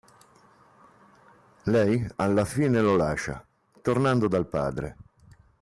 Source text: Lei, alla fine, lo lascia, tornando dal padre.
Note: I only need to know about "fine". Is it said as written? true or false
true